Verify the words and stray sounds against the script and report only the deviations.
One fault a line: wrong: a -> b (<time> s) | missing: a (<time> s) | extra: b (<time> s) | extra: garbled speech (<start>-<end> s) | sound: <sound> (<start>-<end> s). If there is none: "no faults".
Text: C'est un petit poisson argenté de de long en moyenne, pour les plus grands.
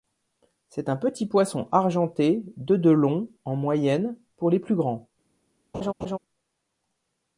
sound: laugh (5.7-6.2 s)